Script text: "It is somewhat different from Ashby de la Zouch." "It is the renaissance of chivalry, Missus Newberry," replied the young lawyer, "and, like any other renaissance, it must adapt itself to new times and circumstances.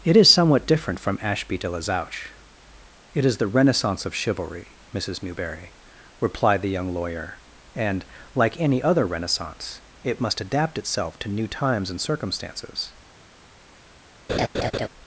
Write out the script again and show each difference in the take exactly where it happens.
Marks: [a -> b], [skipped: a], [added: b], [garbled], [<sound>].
"It is somewhat different from Ashby de la Zouch." "It is the renaissance of chivalry, Missus Newberry," replied the young lawyer, "and, like any other renaissance, it must adapt itself to new times and circumstances. [laugh]